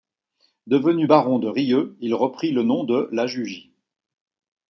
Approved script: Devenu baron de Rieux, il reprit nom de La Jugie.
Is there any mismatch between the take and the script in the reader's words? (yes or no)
yes